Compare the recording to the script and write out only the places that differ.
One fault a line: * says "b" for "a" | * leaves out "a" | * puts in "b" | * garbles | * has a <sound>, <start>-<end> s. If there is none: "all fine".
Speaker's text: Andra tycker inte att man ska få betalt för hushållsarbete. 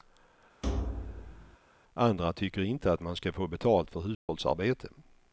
* has a thud, 0.6-1.6 s
* has a dropout, 4.1-4.3 s